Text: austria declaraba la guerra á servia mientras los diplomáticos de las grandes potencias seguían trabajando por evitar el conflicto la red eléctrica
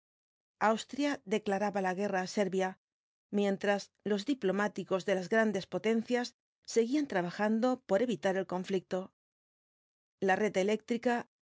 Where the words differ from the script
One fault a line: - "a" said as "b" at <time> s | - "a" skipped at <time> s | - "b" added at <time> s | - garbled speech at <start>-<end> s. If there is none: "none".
none